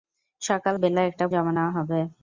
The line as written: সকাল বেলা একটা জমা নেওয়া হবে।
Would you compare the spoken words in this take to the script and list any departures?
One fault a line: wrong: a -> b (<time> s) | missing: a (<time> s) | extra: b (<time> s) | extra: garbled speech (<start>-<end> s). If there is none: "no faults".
no faults